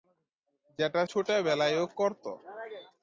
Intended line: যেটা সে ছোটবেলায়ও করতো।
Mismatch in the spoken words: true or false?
true